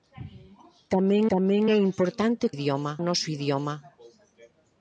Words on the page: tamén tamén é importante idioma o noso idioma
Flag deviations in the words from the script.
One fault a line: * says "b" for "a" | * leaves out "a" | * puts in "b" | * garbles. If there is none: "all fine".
all fine